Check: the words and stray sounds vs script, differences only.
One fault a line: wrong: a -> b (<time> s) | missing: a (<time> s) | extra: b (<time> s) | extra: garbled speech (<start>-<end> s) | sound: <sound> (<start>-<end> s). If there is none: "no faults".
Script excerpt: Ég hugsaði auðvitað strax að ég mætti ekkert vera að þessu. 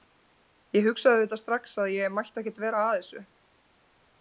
no faults